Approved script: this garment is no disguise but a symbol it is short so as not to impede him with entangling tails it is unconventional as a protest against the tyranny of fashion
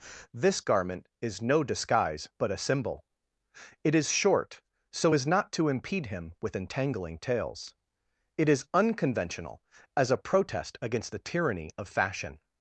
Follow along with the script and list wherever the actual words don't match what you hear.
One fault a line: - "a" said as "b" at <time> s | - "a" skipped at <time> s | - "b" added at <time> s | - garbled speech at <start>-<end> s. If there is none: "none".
none